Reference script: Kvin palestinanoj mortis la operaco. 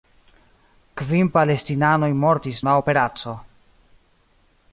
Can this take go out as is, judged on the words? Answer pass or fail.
pass